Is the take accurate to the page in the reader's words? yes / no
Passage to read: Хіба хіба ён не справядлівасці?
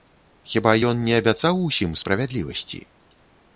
no